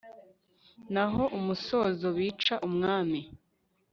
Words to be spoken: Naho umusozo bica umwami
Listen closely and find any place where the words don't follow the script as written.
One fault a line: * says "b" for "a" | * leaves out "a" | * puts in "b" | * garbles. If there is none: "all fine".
all fine